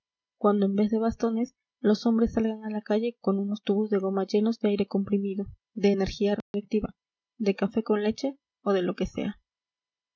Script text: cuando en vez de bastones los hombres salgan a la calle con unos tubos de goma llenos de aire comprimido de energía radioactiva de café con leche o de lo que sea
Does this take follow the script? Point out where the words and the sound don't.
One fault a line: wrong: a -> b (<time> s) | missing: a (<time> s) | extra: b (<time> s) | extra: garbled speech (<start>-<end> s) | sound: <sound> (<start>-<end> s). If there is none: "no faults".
sound: dropout (6.4-6.5 s)